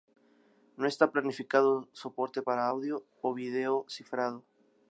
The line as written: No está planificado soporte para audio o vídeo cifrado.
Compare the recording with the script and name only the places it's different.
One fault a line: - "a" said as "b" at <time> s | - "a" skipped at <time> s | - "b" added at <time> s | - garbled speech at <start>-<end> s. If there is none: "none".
none